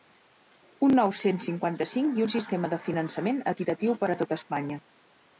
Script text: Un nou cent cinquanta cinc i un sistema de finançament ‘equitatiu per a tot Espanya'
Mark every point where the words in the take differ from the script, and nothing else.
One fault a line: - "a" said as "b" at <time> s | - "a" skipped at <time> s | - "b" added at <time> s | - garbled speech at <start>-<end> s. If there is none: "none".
none